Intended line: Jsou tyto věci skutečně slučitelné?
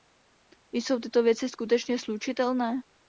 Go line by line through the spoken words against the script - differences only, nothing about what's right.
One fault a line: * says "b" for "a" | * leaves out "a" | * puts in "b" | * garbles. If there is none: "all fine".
all fine